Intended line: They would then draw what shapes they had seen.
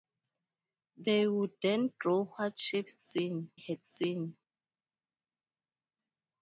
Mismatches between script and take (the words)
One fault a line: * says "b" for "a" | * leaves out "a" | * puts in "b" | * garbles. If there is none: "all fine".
* says "seen" for "they"